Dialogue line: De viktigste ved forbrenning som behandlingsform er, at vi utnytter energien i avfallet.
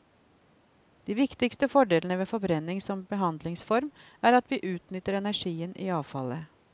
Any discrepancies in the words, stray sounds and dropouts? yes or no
yes